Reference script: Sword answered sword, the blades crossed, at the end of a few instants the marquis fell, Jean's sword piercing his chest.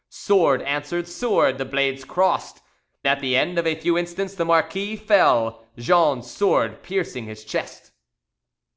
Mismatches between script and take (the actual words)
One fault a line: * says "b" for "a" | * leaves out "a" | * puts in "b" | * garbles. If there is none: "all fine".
all fine